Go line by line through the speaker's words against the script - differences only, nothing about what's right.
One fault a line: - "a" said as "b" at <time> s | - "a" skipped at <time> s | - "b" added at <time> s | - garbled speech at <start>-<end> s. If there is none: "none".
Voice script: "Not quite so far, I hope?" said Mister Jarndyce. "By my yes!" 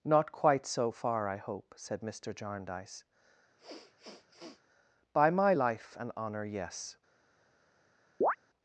- "life and honour" added at 5.5 s